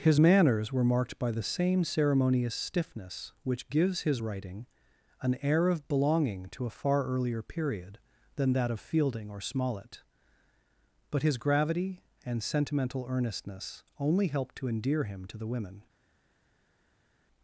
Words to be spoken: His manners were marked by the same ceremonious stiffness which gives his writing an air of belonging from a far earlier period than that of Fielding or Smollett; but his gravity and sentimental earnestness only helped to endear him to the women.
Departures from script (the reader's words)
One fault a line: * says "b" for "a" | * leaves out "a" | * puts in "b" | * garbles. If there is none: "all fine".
* says "to" for "from"